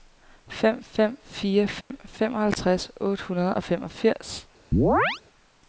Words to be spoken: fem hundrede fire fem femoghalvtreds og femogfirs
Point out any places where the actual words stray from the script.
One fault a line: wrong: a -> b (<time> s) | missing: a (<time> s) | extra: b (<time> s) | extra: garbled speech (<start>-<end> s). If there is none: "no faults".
wrong: hundrede -> fem (0.8 s)
extra: otte hundrede (3.0 s)